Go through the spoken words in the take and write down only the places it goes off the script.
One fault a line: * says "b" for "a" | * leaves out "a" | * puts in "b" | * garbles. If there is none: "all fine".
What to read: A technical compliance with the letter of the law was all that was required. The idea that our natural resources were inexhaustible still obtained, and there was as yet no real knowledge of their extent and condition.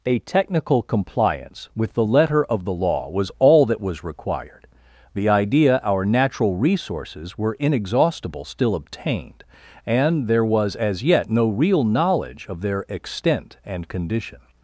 * leaves out "that"